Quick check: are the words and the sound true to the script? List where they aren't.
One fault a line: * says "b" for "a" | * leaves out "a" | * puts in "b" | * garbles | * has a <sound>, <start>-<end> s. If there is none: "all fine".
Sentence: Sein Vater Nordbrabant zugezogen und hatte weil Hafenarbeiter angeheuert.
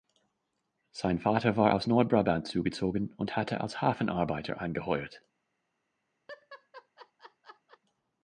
* puts in "war aus"
* says "als" for "weil"
* has a laugh, 6.3-7.8 s